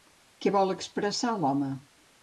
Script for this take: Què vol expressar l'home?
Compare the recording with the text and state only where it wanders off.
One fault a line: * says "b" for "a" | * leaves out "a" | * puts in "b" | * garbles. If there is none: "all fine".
all fine